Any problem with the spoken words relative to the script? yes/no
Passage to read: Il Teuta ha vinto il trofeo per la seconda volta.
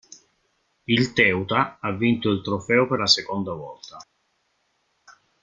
no